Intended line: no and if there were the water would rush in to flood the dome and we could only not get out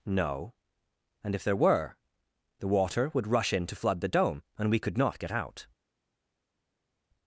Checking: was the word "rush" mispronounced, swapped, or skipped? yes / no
no